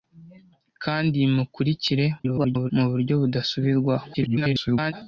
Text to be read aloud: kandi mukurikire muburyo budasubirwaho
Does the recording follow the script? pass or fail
fail